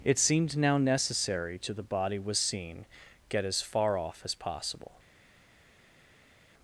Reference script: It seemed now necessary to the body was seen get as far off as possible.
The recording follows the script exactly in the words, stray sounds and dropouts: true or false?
true